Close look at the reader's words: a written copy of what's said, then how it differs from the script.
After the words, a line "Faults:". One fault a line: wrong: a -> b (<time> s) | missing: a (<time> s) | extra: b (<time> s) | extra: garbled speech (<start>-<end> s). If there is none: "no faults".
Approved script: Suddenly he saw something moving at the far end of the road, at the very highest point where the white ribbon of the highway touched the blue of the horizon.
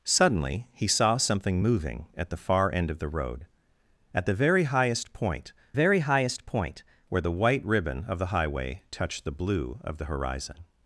Suddenly he saw something moving at the far end of the road, at the very highest point very highest point where the white ribbon of the highway touched the blue of the horizon.
Faults:
extra: very highest point (5.7 s)